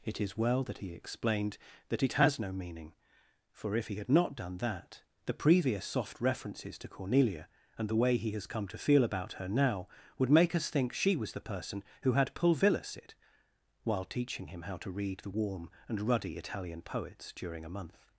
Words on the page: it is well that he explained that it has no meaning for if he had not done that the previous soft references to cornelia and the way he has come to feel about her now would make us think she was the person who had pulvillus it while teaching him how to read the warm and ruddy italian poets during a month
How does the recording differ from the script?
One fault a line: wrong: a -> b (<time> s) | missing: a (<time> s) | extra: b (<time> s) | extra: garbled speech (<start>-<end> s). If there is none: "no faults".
no faults